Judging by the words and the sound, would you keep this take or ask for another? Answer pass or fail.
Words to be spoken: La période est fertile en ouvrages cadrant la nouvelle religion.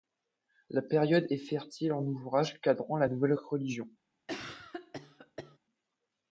fail